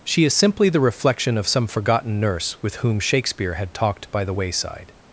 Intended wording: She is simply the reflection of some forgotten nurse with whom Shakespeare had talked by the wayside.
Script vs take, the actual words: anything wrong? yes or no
no